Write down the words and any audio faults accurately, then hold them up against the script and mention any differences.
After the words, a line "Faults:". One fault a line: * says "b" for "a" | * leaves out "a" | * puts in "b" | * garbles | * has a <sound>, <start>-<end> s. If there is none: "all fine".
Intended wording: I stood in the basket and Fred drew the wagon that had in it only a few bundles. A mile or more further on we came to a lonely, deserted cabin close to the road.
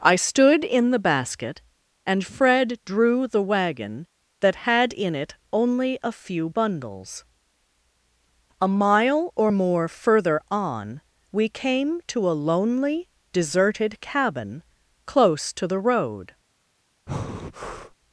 I stood in the basket and Fred drew the wagon that had in it only a few bundles. A mile or more further on we came to a lonely, deserted cabin close to the road.
Faults:
* has a breath, 17.1-18.0 s